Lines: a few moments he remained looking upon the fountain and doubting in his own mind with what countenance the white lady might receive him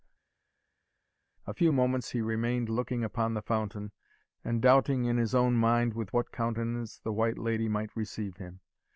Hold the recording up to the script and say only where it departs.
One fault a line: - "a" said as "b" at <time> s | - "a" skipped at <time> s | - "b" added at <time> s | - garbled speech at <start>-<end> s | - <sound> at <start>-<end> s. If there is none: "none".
none